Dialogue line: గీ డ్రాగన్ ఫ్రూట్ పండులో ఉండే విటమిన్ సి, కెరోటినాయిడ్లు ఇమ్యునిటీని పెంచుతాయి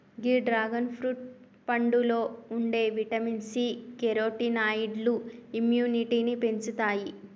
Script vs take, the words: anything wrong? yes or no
no